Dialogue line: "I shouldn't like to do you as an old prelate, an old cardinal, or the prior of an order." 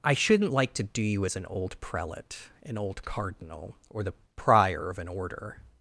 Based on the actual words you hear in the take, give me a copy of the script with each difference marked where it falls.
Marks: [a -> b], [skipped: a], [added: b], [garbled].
"I shouldn't like to do you as an old prelate, an old cardinal, or the prior of an order."